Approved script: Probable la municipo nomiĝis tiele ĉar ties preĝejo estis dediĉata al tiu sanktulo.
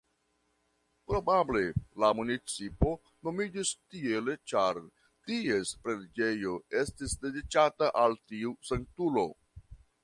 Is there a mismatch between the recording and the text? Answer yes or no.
no